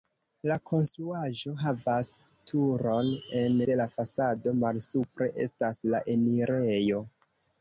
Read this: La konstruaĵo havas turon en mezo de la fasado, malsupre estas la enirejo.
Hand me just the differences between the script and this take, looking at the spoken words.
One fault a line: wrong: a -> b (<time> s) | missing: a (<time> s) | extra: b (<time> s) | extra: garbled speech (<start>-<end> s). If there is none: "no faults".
missing: mezo (3.6 s)